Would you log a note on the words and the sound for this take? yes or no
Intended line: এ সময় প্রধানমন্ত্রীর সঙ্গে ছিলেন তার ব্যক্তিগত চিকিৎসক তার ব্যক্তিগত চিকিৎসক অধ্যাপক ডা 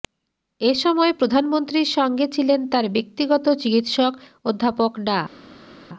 yes